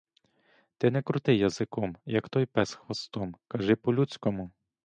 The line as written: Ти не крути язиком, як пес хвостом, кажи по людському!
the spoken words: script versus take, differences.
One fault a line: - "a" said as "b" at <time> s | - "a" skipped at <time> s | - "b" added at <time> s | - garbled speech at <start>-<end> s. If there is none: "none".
- "той" added at 2.3 s